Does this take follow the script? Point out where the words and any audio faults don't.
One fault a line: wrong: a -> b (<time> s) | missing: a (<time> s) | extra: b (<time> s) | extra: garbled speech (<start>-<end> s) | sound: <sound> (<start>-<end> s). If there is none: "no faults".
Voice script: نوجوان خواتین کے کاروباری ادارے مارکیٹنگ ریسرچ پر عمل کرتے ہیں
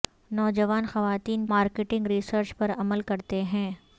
missing: کے کاروباری ادارے (1.4 s)